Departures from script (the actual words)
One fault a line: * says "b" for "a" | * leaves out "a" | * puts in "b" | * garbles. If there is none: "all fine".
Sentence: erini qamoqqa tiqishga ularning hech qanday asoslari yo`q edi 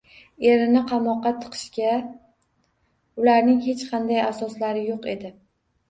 all fine